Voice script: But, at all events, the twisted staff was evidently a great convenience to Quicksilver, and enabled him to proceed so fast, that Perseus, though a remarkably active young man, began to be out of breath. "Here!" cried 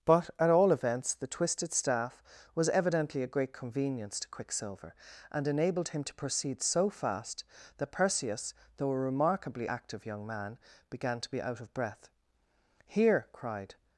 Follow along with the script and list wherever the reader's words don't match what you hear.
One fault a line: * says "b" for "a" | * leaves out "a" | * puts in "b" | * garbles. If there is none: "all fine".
all fine